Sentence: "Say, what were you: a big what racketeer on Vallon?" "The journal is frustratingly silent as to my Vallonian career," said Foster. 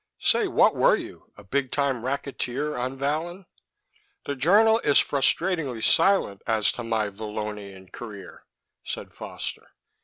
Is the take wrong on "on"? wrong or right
right